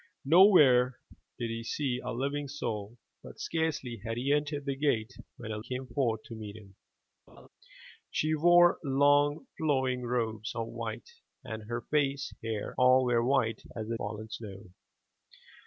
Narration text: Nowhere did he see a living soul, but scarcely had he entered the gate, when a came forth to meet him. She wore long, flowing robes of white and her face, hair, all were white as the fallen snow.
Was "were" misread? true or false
false